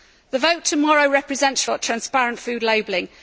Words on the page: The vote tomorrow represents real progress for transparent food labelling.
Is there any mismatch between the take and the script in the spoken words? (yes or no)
yes